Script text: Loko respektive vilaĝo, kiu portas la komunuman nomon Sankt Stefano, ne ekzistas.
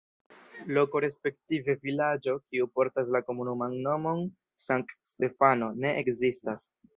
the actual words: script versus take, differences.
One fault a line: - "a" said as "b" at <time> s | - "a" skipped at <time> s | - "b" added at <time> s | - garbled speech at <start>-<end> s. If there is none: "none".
none